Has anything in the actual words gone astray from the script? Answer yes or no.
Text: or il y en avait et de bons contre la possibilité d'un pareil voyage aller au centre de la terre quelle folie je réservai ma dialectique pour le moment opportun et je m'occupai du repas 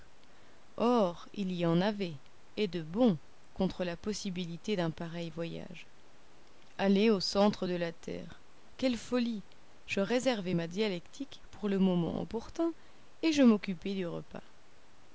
no